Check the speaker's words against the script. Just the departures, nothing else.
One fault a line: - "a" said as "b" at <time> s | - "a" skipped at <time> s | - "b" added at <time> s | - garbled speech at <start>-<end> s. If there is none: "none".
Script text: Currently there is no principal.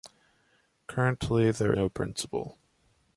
- "is" skipped at 1.8 s